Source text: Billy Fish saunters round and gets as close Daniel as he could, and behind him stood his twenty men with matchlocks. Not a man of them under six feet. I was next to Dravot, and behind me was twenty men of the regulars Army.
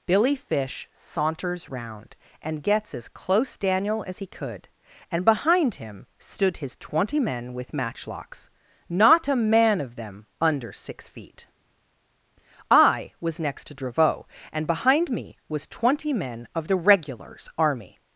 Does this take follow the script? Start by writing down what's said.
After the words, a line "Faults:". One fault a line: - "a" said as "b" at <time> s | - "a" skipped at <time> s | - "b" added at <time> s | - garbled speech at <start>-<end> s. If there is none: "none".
Billy Fish saunters round and gets as close Daniel as he could, and behind him stood his twenty men with matchlocks. Not a man of them under six feet. I was next to Dravot, and behind me was twenty men of the regulars Army.
Faults:
none